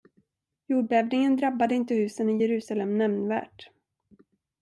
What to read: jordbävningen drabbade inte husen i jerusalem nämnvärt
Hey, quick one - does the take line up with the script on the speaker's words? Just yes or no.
yes